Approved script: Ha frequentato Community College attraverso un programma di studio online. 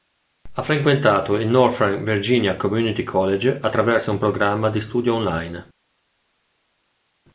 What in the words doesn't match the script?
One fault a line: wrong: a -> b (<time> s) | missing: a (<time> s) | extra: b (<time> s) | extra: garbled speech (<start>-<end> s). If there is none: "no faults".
extra: il Northern Virginia (1.4 s)